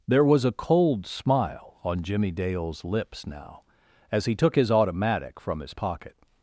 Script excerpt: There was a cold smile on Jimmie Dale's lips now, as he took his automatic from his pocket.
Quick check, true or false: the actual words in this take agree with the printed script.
true